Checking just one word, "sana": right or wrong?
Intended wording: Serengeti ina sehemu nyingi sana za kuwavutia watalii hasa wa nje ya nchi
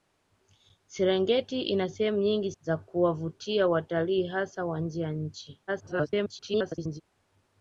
wrong